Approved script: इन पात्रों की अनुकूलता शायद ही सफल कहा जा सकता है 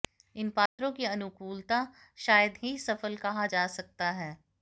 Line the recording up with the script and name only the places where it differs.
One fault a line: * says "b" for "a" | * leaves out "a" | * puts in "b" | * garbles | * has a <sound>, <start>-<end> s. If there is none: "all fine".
* has a dropout, 0.7-0.8 s